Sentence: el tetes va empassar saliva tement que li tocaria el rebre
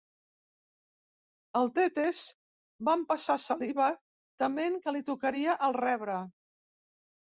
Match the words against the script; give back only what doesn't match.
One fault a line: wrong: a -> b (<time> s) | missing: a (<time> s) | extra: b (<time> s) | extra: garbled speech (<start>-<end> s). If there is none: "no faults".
no faults